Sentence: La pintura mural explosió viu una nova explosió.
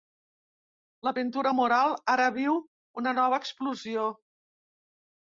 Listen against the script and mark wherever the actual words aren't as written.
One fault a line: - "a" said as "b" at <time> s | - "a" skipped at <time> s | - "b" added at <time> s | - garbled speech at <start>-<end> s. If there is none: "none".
- "explosió" said as "ara" at 2.1 s